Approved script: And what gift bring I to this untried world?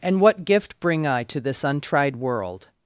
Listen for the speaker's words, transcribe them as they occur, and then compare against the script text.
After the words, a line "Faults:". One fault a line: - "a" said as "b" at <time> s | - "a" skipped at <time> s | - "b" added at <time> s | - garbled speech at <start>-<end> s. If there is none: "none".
And what gift bring I to this untried world?
Faults:
none